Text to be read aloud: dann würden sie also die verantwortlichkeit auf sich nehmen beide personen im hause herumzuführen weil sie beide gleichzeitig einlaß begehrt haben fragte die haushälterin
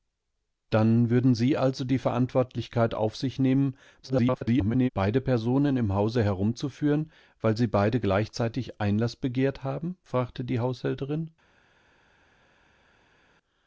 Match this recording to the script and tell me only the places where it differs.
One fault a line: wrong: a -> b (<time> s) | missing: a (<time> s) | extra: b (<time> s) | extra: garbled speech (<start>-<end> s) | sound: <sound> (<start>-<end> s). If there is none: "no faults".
extra: garbled speech (4.0-4.9 s)